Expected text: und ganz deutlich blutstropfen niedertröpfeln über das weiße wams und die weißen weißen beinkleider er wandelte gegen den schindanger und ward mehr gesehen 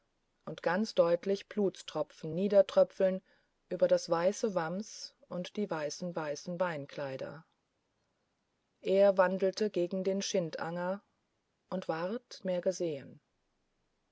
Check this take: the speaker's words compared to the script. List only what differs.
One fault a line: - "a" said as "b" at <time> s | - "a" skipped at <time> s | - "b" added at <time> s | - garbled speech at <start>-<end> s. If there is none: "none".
none